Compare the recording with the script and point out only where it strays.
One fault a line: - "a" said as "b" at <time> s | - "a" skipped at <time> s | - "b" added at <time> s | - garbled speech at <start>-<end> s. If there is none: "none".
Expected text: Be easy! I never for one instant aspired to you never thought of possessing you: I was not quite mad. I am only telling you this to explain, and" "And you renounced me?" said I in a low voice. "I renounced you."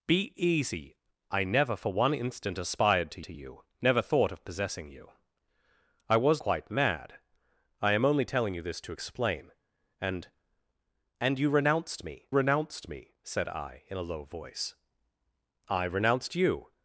- "to" added at 3.2 s
- "not" skipped at 6.4 s
- "renounced me" added at 12.3 s